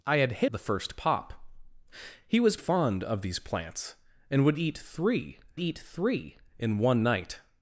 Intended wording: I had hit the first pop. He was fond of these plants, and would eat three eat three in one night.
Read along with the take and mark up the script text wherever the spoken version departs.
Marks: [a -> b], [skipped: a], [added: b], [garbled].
I had hit the first pop. He was fond of these plants, and would eat three eat three in one night.